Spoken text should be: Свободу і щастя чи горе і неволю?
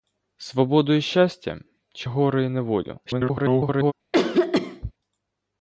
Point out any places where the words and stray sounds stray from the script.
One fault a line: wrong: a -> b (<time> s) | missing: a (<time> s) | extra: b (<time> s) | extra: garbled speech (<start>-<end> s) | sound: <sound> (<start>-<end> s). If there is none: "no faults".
extra: garbled speech (3.1-3.9 s)
sound: cough (4.1-4.9 s)